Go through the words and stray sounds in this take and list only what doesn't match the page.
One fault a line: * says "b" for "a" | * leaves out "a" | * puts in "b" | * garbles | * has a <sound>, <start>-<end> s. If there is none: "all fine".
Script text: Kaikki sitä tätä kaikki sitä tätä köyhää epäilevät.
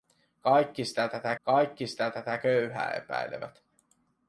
all fine